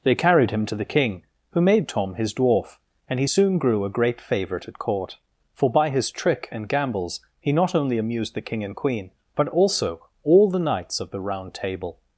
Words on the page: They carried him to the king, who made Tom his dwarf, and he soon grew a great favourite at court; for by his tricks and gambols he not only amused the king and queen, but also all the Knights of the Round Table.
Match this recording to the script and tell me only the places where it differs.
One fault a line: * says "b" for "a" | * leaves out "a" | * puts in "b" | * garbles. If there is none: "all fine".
* says "trick" for "tricks"